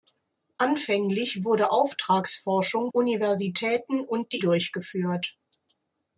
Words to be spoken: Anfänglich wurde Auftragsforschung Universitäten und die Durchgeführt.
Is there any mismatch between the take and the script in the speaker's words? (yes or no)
no